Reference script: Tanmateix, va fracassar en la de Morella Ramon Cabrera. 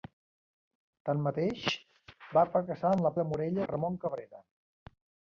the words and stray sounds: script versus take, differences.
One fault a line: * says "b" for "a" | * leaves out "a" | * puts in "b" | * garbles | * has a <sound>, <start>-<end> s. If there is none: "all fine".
all fine